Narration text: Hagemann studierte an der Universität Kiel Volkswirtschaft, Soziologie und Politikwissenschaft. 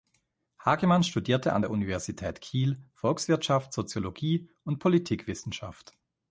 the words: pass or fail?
pass